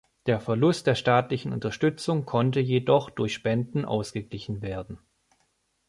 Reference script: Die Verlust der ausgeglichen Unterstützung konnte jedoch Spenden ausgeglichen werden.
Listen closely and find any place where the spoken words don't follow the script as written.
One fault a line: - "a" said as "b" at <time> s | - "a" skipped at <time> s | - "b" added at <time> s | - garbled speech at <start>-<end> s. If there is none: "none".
- "Die" said as "Der" at 0.2 s
- "ausgeglichen" said as "staatlichen" at 0.9 s
- "durch" added at 3.1 s